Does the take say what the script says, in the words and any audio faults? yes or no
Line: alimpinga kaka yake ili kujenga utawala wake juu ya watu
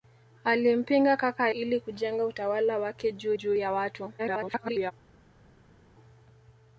no